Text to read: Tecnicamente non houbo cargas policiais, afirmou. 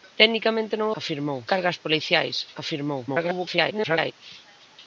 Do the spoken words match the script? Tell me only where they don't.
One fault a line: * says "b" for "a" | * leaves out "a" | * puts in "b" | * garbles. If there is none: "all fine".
* says "afirmou" for "houbo"
* garbles